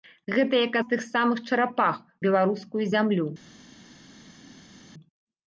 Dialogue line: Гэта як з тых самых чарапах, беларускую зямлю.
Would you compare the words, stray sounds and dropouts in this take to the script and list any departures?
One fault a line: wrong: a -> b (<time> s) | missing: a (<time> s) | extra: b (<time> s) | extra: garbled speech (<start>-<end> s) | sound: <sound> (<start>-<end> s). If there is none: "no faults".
no faults